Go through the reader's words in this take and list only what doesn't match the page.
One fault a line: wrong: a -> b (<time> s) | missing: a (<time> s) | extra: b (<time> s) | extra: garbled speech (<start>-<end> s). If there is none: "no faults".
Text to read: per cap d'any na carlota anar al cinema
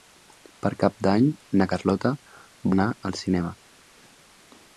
no faults